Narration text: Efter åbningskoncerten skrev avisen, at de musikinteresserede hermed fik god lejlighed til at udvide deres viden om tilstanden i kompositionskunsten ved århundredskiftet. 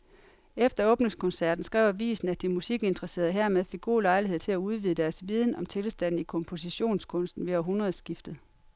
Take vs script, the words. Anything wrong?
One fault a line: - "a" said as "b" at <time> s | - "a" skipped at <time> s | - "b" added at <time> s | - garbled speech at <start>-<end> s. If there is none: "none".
none